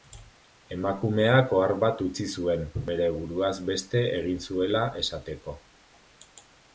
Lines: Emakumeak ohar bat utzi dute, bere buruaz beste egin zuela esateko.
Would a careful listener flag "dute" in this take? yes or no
yes